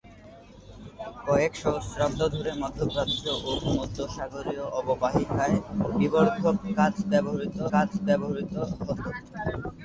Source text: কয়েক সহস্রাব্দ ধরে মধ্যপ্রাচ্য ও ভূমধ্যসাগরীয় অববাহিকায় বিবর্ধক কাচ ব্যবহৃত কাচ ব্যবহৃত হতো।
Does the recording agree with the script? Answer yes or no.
yes